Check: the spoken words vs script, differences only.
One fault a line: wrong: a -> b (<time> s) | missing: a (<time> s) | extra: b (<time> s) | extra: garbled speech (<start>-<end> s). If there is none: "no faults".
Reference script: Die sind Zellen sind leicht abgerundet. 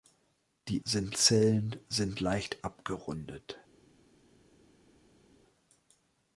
no faults